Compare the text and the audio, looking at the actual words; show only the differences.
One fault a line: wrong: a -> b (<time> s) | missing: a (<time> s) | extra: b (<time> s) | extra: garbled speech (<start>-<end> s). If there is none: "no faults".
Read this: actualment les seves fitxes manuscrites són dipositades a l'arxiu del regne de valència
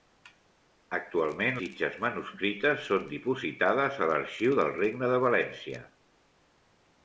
missing: les seves (1.6 s)